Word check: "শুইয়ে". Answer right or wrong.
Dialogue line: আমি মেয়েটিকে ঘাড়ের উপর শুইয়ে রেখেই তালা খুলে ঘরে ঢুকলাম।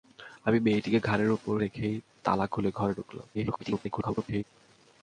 wrong